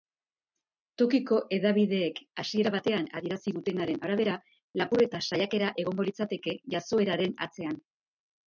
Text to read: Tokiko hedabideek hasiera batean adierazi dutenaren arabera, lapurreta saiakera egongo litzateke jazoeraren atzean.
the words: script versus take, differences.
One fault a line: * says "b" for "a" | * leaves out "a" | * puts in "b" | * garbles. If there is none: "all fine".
all fine